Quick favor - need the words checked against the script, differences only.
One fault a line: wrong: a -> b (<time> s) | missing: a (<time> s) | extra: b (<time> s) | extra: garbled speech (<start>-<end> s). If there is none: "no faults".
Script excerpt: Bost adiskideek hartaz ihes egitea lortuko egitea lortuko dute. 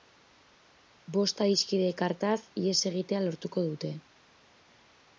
missing: egitea lortuko (3.7 s)